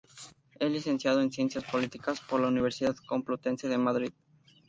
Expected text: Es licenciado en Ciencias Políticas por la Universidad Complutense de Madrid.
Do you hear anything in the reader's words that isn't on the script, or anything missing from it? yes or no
no